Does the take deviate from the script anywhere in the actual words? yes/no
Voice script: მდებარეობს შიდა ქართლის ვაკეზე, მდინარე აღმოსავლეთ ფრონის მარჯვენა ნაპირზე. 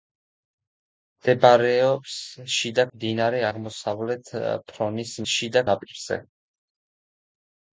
yes